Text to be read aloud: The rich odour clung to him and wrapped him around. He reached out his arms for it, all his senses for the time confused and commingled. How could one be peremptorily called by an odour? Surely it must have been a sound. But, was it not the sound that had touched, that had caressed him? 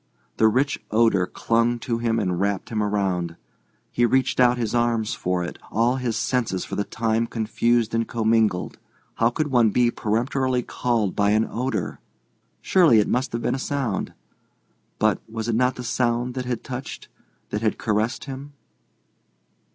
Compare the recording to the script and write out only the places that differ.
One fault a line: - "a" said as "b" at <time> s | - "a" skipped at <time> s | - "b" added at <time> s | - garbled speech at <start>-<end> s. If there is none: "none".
none